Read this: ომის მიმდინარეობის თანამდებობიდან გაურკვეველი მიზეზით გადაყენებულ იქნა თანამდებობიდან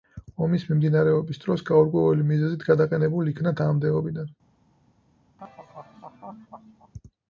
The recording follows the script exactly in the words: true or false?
false